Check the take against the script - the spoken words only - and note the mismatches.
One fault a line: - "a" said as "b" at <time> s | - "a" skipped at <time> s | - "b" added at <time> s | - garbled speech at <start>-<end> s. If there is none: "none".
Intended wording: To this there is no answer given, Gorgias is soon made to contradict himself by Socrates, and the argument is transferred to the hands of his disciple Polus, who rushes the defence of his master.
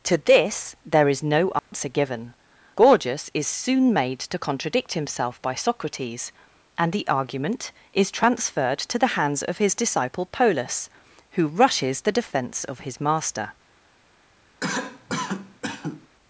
none